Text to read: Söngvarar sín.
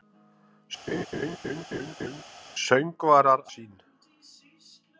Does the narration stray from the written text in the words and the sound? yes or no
yes